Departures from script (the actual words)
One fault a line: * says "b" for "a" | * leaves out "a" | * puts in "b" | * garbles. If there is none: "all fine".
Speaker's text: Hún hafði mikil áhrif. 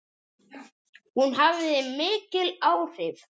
all fine